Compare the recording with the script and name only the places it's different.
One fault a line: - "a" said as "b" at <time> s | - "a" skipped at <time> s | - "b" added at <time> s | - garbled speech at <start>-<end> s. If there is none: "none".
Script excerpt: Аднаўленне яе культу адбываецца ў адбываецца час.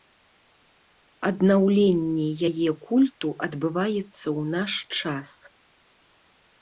- "адбываецца" said as "наш" at 4.6 s